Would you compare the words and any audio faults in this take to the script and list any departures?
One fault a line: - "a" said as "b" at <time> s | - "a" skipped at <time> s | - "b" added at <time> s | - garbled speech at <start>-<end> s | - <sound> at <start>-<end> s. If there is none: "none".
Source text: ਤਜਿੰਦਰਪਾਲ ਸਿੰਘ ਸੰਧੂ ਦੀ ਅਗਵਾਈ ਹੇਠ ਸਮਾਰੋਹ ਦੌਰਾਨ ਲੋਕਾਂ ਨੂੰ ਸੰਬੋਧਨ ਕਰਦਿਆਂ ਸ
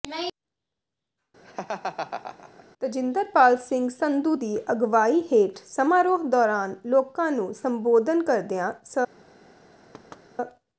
- laugh at 1.4-2.7 s
- thud at 9.9-10.3 s